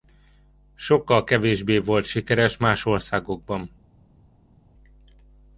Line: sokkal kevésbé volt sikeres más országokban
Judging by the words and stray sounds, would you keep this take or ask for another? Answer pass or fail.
pass